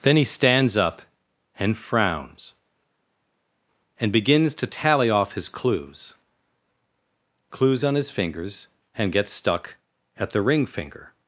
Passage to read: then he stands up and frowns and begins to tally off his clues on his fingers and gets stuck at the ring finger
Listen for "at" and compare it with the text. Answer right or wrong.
right